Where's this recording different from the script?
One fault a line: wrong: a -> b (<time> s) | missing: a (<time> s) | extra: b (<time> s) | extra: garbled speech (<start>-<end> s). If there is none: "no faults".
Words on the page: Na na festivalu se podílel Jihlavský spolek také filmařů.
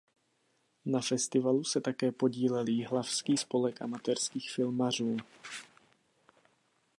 missing: na (1.0 s)
extra: také (1.8 s)
wrong: také -> amatérských (3.8 s)